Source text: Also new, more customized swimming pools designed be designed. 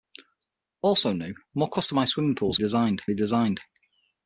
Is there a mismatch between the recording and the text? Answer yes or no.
no